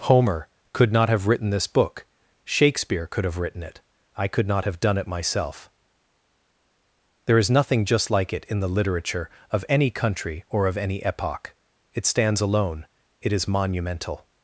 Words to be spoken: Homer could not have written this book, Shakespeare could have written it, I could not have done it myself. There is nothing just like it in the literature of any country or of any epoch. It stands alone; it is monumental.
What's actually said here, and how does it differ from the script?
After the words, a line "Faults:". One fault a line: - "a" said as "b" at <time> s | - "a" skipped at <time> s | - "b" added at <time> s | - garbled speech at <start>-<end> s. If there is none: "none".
Homer could not have written this book, Shakespeare could have written it, I could not have done it myself. There is nothing just like it in the literature of any country or of any epoch. It stands alone; it is monumental.
Faults:
none